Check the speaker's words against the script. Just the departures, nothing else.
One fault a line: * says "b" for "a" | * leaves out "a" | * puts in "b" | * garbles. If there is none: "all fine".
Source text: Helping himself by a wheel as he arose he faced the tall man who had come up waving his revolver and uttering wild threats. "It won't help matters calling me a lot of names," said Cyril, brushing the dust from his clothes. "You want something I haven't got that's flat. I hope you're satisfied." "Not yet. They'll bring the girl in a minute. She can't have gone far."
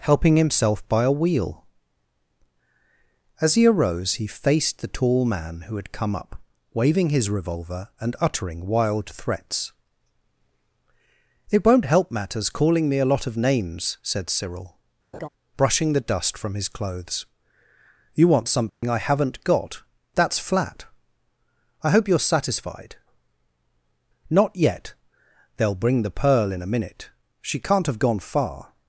* says "pearl" for "girl"